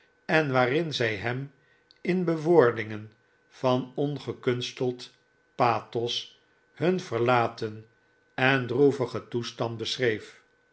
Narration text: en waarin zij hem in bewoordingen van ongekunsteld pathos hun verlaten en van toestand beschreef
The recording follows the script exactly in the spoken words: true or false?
false